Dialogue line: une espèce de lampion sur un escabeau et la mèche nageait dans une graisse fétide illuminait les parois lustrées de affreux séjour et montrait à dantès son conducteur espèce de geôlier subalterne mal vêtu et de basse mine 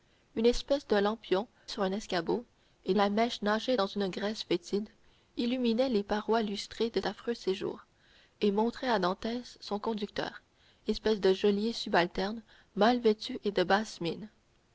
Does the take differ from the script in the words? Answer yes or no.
no